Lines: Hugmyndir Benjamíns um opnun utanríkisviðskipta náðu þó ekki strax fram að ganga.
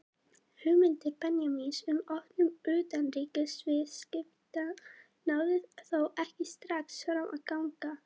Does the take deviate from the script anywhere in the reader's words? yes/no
no